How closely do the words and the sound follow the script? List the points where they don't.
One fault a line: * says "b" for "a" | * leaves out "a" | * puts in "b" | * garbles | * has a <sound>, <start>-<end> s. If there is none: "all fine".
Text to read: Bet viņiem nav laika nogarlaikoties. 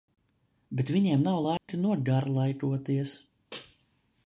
* has a dropout, 1.6-1.7 s